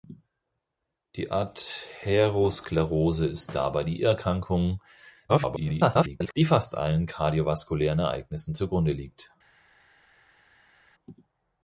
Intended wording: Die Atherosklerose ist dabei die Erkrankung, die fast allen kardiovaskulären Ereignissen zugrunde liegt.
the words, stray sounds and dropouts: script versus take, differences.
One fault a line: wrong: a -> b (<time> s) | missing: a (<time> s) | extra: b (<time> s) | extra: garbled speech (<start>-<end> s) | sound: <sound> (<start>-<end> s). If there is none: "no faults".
extra: garbled speech (5.3-6.3 s)